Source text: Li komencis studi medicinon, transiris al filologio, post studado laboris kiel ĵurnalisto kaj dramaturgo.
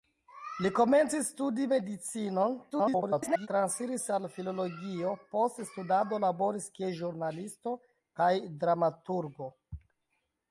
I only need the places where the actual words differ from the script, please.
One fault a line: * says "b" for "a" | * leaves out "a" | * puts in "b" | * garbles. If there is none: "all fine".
* garbles